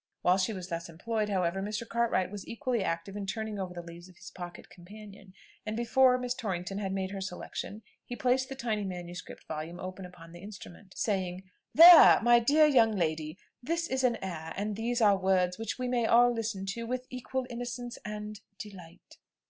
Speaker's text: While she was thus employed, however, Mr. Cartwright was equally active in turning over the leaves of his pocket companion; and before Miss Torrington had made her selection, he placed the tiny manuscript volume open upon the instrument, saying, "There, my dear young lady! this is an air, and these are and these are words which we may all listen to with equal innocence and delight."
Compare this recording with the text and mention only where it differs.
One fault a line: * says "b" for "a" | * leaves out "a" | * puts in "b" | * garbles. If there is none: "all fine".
* leaves out "and these are"